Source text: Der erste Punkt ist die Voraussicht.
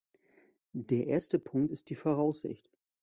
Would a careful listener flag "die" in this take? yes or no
no